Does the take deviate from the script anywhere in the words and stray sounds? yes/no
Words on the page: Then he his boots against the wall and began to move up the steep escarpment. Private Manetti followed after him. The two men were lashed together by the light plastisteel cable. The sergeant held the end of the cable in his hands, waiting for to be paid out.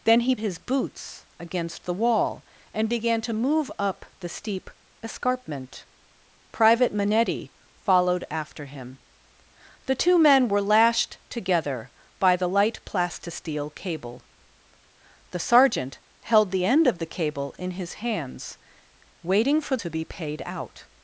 no